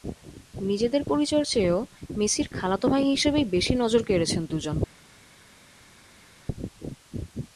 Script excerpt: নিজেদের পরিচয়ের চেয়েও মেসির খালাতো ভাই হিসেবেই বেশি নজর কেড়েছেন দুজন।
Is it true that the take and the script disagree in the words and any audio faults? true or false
false